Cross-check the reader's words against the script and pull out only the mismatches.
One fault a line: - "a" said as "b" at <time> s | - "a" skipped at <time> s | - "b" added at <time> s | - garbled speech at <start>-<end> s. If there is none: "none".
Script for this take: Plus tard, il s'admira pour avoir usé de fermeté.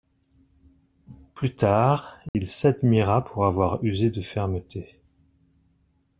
none